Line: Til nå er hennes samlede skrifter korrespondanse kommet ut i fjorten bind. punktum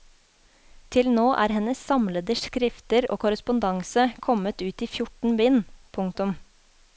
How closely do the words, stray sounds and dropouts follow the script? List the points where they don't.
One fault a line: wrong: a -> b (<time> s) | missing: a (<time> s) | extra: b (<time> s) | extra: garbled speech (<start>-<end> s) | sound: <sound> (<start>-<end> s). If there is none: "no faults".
extra: og (3.1 s)